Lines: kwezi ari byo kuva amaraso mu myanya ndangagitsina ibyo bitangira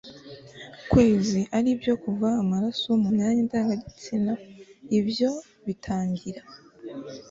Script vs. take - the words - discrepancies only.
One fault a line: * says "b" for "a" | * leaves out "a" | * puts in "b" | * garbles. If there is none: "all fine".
all fine